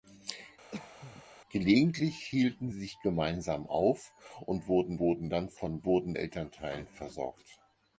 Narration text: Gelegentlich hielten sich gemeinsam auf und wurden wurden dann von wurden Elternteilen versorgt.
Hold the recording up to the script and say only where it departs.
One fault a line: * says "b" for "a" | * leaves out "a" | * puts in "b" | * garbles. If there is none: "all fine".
all fine